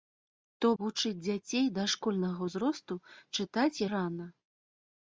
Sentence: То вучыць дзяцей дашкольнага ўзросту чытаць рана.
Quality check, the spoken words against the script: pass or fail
pass